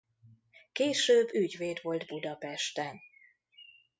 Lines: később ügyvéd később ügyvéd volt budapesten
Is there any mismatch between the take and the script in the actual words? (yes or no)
yes